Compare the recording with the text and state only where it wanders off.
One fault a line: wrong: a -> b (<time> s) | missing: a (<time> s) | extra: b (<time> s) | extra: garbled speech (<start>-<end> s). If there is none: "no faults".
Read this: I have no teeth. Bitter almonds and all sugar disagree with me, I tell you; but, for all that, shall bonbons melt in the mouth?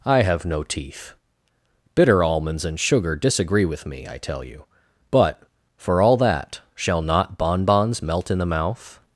missing: all (2.8 s)
extra: not (7.0 s)